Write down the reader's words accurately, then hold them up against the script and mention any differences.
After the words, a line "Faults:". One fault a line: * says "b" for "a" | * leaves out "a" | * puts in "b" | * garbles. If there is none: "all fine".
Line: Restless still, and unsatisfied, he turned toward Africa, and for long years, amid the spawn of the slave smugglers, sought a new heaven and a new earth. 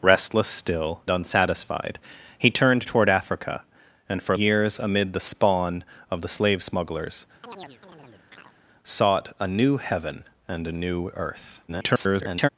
Restless still, unsatisfied, he turned toward Africa, and for years, amid the spawn of the slave smugglers, sought a new heaven and a new earth. [garbled]
Faults:
* leaves out "and"
* leaves out "long"
* garbles